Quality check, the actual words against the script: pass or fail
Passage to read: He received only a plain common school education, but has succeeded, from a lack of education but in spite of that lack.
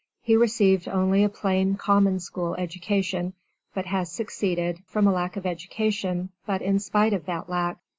pass